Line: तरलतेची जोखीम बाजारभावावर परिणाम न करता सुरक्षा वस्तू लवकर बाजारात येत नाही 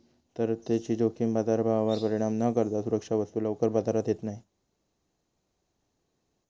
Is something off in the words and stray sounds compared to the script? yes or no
no